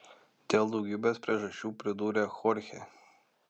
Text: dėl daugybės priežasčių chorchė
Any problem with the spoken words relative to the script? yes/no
yes